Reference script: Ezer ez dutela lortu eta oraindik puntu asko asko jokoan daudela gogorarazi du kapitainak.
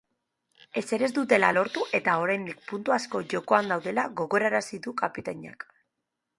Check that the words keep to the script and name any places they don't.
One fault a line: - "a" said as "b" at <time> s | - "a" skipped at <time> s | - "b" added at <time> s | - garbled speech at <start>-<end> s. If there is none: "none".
- "asko" skipped at 3.2 s